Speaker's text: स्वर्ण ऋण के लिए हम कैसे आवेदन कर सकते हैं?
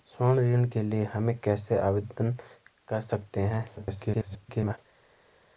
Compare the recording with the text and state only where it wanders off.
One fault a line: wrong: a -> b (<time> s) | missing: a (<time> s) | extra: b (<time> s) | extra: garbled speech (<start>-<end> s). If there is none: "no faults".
extra: garbled speech (3.8-4.8 s)